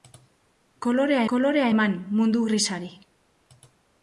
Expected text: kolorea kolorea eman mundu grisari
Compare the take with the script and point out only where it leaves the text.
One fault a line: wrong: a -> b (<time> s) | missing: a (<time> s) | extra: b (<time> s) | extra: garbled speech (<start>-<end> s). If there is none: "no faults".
no faults